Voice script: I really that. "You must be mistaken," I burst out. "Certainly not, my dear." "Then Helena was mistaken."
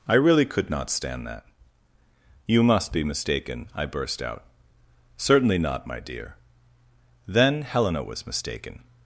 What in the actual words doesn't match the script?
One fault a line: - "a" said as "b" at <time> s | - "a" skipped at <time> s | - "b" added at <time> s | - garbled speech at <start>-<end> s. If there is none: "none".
- "could not stand" added at 0.5 s